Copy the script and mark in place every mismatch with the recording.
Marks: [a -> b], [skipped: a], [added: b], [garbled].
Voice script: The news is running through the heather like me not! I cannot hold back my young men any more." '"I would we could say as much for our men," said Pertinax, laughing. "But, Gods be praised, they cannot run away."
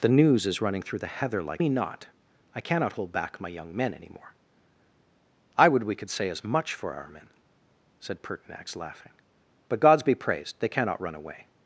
The news is running through the heather like me not! I cannot hold back my young men any more." '"I would we could say as much for our men," said Pertinax, laughing. "But, Gods be praised, they cannot run away."